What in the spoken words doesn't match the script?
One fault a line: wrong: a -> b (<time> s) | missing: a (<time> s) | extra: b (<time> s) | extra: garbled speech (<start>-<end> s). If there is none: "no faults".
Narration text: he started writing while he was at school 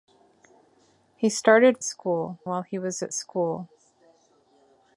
wrong: writing -> school (1.8 s)